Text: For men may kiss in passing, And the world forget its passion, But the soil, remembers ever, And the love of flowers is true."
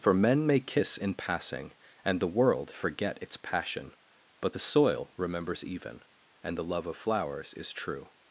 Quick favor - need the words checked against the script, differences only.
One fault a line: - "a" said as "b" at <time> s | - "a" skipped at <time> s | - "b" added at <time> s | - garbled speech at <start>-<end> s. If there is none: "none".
- "ever" said as "even" at 5.6 s